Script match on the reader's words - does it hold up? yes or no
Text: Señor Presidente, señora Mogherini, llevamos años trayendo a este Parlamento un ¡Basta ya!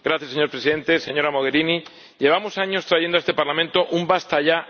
yes